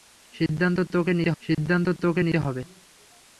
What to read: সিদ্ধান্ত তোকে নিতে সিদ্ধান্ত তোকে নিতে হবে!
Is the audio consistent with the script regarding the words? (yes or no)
yes